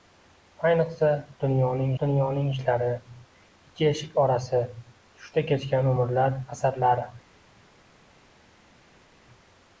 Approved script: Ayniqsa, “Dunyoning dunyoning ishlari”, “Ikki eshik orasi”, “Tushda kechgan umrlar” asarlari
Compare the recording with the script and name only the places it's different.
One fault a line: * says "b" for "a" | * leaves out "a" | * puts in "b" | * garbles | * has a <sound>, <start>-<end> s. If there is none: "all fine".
all fine